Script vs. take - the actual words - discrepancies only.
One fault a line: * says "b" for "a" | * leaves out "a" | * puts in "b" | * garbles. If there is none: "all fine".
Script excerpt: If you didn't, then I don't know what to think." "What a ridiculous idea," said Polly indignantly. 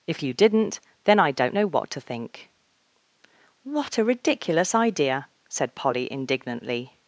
all fine